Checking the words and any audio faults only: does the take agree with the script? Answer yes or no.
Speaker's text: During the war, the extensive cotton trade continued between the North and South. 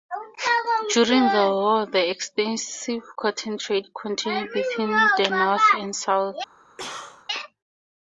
no